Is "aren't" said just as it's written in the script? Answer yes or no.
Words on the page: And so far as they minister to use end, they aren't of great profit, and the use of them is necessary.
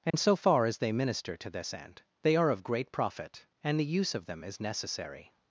no